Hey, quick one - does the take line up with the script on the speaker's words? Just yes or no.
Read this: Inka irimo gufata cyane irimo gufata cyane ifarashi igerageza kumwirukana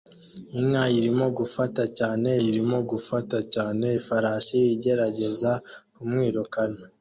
yes